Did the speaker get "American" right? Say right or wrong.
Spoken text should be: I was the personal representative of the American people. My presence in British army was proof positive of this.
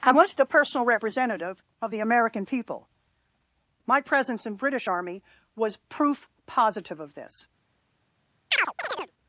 right